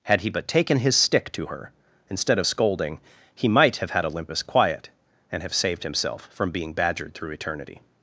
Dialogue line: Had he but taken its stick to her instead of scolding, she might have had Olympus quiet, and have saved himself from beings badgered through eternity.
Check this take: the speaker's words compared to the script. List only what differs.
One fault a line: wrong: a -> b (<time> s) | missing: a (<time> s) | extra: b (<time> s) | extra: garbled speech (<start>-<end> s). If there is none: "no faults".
wrong: its -> his (0.8 s)
wrong: she -> he (3.3 s)
wrong: beings -> being (6.5 s)